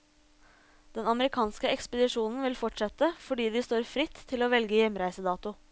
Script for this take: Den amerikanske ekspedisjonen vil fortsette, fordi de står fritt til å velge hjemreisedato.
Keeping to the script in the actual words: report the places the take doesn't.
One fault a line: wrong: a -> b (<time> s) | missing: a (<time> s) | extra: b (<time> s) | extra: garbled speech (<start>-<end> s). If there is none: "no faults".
no faults